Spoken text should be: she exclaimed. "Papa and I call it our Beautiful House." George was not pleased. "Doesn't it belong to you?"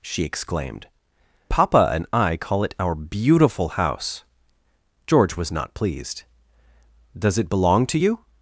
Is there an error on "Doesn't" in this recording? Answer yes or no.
yes